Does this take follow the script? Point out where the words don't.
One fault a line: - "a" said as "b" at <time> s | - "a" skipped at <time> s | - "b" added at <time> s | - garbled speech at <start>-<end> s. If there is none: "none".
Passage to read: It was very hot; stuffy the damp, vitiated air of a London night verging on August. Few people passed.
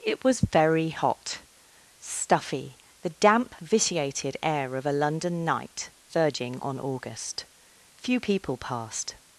none